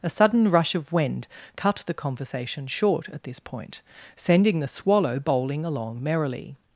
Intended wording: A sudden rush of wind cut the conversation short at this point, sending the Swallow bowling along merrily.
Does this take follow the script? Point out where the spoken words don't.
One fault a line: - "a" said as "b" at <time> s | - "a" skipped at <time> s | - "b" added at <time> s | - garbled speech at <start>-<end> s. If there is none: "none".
none